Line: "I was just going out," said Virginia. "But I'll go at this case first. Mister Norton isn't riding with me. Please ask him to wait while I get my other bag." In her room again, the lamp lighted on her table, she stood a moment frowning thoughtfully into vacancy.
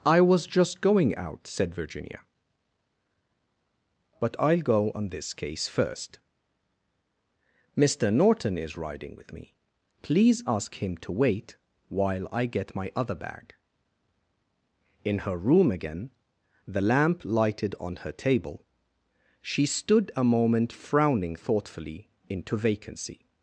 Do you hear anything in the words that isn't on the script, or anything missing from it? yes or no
yes